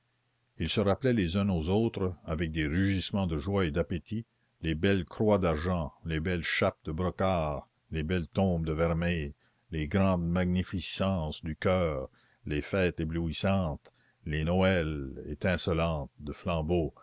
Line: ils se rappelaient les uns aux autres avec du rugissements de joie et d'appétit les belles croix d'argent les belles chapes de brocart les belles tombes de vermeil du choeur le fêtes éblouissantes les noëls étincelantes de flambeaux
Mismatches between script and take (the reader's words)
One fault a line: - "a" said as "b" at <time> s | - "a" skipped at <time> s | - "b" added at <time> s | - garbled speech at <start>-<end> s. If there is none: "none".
- "du" said as "des" at 2.5 s
- "les grandes magnificences" added at 9.7 s
- "le" said as "les" at 12.5 s